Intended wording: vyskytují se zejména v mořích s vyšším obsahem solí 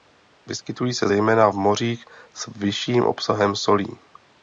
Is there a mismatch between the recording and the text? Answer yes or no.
no